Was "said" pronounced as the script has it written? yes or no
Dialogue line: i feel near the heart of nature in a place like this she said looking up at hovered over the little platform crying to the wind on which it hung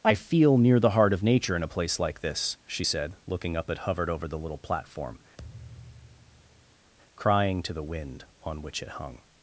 yes